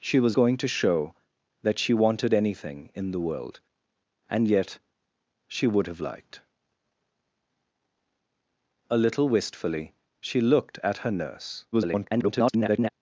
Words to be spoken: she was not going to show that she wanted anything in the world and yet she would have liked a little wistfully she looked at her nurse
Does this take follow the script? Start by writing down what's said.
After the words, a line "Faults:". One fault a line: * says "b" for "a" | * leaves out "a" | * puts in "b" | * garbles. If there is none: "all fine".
she was going to show that she wanted anything in the world and yet she would have liked a little wistfully she looked at her nurse [garbled]
Faults:
* leaves out "not"
* garbles